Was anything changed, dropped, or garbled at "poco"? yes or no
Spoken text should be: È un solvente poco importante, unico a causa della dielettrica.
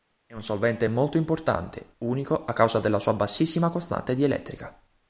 yes